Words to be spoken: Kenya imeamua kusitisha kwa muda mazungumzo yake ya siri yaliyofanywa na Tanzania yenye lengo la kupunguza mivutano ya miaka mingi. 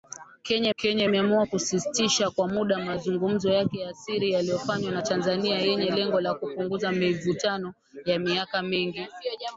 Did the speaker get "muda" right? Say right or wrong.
right